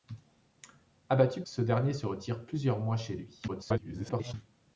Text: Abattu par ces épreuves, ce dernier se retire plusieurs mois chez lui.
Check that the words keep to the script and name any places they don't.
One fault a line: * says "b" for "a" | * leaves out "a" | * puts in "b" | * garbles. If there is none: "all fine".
* leaves out "par ces épreuves"
* garbles